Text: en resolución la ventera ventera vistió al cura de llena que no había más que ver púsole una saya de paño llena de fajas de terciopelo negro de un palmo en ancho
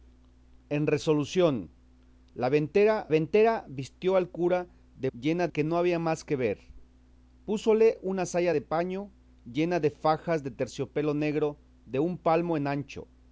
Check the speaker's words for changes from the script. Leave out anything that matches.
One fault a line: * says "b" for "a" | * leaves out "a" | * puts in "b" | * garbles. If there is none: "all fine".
all fine